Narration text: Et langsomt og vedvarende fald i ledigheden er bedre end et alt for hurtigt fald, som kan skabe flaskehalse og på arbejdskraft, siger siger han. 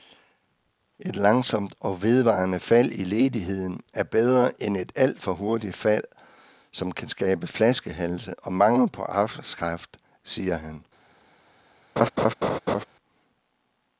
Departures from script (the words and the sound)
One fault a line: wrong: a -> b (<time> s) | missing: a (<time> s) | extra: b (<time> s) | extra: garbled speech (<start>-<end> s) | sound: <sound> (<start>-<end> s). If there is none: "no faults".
extra: mangel (8.5 s)
missing: siger (10.6 s)
sound: laugh (12.0-12.8 s)